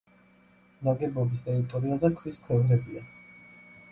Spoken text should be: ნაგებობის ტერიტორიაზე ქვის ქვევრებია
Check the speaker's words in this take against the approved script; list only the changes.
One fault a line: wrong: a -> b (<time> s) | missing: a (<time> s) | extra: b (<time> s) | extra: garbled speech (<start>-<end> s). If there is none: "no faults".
no faults